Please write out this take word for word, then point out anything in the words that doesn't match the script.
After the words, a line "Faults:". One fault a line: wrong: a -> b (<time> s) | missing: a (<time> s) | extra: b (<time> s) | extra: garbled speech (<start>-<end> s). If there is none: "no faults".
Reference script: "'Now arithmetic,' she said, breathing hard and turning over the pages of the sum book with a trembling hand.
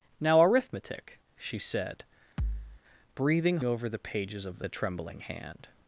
"'Now arithmetic,' she said, breathing over the pages of the a trembling hand.
Faults:
missing: hard and turning (3.6 s)
missing: sum book with (4.7 s)